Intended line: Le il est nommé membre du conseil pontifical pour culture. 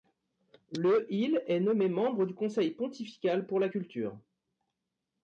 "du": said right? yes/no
yes